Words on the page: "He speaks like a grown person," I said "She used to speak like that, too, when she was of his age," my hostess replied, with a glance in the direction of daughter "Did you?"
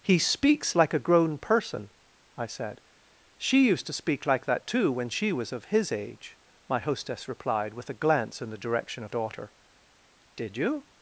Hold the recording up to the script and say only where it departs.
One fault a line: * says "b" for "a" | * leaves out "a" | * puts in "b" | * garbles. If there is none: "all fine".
all fine